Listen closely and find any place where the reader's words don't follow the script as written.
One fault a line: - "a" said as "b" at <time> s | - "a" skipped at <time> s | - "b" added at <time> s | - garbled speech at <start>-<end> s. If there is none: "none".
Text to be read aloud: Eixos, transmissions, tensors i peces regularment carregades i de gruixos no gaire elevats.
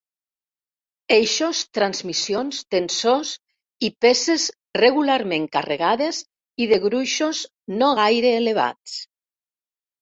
none